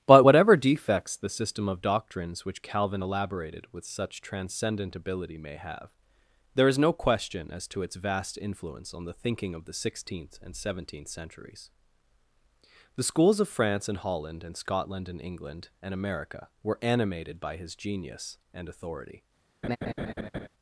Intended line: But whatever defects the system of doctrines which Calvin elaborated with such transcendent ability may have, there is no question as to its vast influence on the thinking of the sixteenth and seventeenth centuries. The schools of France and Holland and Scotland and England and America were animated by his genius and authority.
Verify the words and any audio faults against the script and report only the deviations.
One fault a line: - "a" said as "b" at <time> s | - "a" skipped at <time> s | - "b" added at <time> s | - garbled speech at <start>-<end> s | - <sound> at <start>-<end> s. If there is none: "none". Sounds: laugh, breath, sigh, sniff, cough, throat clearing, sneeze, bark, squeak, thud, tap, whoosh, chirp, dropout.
- laugh at 19.6-20.5 s